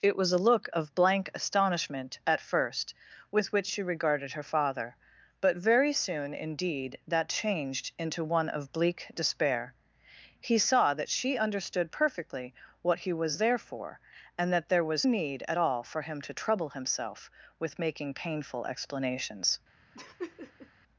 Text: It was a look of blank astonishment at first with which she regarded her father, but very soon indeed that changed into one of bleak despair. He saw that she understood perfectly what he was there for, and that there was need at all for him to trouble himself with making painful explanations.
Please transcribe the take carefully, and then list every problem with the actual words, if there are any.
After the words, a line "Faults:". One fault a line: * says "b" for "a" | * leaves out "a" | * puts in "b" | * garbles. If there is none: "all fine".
It was a look of blank astonishment at first with which she regarded her father, but very soon indeed that changed into one of bleak despair. He saw that she understood perfectly what he was there for, and that there was need at all for him to trouble himself with making painful explanations.
Faults:
all fine